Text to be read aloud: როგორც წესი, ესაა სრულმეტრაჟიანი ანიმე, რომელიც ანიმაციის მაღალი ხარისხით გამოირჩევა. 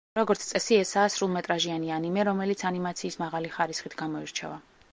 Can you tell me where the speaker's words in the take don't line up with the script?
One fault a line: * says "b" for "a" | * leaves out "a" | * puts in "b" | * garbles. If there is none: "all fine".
all fine